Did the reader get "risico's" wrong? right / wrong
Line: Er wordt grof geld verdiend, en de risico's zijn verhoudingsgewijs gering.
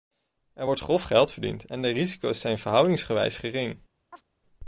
right